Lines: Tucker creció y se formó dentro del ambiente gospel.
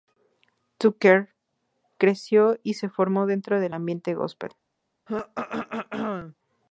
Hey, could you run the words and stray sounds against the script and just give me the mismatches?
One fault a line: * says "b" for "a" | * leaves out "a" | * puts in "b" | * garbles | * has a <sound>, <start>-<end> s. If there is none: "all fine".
* has a throat clearing, 5.1-6.4 s